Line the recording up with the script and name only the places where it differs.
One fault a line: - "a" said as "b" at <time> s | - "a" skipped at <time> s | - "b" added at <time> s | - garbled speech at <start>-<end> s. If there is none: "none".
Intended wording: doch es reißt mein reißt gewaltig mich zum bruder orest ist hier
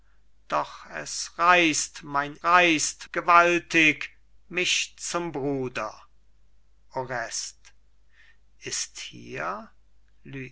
none